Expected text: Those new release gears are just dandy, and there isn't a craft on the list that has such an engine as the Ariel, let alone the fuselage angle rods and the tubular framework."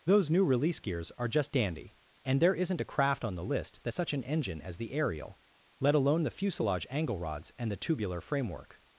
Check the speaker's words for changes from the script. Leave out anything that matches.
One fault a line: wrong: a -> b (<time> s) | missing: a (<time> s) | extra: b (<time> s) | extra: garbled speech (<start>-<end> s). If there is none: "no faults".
missing: has (3.9 s)